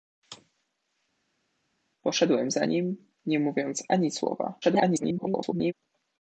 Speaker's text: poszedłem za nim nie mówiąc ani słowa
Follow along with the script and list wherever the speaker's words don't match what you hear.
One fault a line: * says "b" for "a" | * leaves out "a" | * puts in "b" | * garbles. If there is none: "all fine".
* garbles